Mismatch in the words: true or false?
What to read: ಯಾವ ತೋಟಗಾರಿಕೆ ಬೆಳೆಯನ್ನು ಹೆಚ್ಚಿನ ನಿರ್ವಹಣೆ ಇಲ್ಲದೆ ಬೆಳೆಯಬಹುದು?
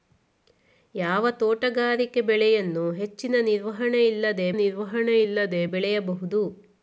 true